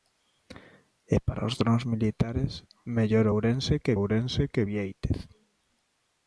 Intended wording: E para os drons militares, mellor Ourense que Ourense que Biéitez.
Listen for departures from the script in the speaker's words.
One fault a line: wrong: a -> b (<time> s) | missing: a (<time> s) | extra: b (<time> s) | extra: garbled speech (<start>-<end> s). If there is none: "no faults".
no faults